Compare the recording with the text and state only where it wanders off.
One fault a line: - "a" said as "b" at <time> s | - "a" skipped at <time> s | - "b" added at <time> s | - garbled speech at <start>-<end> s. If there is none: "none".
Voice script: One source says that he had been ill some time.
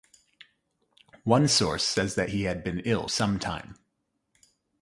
none